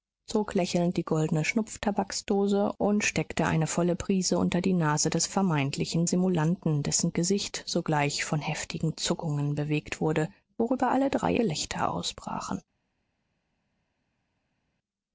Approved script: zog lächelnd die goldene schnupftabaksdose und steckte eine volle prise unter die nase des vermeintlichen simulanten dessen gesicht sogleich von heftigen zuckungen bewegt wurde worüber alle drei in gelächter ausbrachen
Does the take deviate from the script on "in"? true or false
true